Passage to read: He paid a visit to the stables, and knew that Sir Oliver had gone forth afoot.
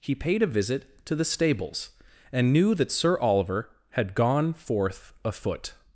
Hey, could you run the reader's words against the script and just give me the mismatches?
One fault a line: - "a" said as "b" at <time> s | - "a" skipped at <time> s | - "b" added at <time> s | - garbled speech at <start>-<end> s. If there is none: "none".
none